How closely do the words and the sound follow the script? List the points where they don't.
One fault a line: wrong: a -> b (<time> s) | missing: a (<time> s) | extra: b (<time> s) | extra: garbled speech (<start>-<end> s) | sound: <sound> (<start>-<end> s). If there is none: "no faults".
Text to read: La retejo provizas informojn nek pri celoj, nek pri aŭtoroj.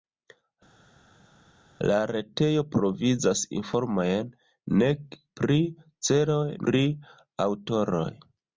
missing: nek (6.4 s)